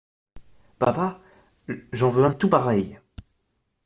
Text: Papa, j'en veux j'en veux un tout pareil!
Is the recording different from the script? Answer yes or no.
yes